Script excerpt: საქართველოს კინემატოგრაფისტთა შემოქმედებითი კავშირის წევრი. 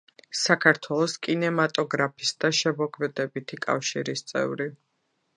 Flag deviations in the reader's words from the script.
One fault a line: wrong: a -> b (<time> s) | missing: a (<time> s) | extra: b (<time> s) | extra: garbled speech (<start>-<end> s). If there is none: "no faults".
no faults